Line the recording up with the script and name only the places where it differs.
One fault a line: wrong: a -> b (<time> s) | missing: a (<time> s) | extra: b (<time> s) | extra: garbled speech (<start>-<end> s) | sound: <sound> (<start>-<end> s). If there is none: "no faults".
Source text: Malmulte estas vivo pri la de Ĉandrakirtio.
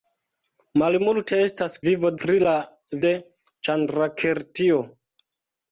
no faults